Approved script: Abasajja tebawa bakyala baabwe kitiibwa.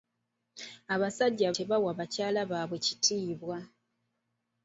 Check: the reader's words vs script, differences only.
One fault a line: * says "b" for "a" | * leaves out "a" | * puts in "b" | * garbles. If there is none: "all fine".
all fine